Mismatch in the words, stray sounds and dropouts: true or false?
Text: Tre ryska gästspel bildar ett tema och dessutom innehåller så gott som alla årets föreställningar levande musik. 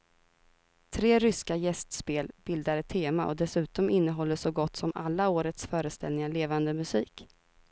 false